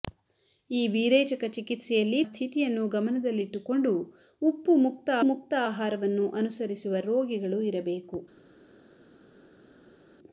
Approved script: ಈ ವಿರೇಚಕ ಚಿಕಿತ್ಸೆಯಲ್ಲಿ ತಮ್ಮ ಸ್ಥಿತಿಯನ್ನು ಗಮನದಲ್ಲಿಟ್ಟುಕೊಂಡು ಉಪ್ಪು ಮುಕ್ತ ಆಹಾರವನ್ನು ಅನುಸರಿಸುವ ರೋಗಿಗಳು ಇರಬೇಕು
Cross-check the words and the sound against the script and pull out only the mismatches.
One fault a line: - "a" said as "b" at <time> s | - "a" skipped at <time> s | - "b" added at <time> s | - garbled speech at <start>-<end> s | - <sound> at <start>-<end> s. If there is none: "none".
- "ತಮ್ಮ" skipped at 2.2 s
- "ಮುಕ್ತ" added at 5.3 s